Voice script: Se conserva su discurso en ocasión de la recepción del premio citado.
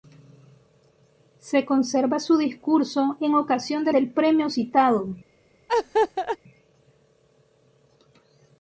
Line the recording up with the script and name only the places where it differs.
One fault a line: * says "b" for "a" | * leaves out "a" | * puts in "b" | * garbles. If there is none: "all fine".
* leaves out "la recepción"